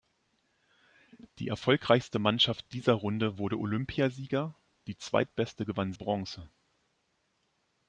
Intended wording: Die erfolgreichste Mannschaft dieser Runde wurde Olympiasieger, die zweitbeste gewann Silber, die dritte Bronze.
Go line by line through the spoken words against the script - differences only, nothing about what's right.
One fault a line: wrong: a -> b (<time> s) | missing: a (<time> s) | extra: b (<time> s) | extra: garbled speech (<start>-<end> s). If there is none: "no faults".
missing: Silber die dritte (5.9 s)